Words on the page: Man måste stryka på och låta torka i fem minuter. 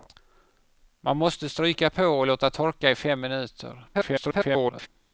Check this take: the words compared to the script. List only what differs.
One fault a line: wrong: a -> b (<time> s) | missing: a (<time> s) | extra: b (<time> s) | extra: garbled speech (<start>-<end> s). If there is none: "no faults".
extra: garbled speech (3.9-4.9 s)